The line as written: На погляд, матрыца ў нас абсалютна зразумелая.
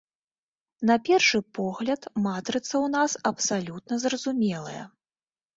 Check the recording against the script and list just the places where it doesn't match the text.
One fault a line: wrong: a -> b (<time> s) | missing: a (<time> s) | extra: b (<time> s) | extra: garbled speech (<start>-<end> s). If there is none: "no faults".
extra: першы (1.1 s)